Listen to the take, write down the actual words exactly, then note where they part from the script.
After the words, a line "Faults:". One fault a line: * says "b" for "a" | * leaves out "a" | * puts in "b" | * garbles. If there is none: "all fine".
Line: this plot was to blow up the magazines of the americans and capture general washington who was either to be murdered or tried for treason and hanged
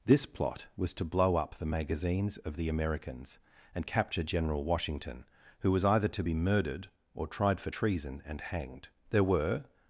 this plot was to blow up the magazines of the americans and capture general washington who was either to be murdered or tried for treason and hanged there were
Faults:
* puts in "there were"